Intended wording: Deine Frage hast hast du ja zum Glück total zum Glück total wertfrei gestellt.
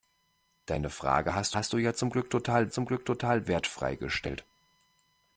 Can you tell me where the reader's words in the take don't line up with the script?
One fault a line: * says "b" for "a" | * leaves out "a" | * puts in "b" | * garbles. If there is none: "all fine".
all fine